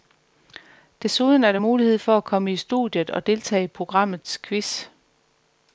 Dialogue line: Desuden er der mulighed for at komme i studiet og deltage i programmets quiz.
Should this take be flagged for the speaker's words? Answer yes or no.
no